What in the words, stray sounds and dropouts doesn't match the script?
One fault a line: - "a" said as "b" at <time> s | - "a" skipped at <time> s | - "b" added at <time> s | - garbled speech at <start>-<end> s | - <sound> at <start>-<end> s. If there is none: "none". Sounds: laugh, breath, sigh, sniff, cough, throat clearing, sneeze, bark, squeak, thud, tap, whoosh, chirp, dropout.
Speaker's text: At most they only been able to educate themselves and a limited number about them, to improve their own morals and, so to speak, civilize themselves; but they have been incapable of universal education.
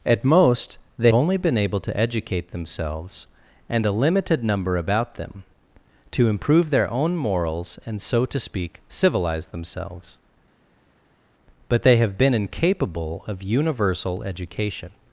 none